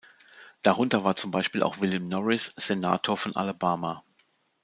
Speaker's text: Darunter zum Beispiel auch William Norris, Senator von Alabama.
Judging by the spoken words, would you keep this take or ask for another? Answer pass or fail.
fail